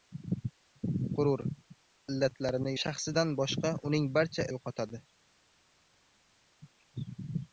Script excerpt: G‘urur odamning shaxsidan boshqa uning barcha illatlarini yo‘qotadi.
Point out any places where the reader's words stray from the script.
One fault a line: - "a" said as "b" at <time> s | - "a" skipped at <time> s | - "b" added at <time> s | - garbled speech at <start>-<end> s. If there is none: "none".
- "odamning" said as "illatlarini" at 2.1 s
- "illatlarini" skipped at 4.5 s